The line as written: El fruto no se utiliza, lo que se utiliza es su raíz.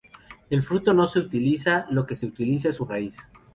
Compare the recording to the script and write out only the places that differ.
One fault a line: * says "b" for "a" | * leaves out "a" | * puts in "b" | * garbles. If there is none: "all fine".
all fine